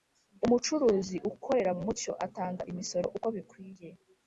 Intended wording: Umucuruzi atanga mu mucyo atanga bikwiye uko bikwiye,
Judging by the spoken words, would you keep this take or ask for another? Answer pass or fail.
fail